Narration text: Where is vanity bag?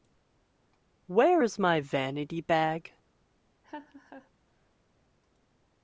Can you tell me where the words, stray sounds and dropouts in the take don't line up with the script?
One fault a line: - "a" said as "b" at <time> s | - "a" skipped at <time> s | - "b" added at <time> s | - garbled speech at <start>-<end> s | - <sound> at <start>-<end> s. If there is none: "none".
- "my" added at 1.6 s
- laugh at 3.6-4.3 s